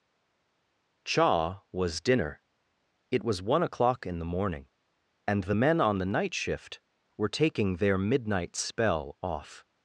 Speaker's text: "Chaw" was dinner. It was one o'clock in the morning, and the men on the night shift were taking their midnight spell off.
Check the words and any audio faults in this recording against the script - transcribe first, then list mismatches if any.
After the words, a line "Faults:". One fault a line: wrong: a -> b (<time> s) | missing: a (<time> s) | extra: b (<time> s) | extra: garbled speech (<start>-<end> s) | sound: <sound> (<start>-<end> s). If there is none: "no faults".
"Chaw" was dinner. It was one o'clock in the morning, and the men on the night shift were taking their midnight spell off.
Faults:
no faults